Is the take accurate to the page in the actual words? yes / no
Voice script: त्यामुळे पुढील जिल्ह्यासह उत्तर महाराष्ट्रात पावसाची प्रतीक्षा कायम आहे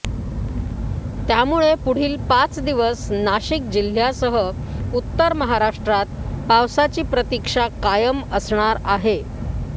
no